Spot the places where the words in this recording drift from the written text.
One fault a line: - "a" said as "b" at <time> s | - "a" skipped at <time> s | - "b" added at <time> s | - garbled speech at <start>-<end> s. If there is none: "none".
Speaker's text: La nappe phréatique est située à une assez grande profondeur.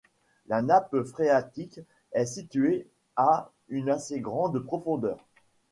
none